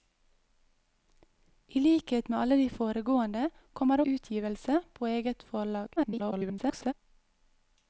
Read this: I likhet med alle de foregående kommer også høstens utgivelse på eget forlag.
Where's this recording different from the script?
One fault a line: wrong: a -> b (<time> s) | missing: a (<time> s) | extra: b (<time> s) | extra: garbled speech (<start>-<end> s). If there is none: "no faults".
missing: også høstens (4.0 s)
extra: garbled speech (6.0-6.9 s)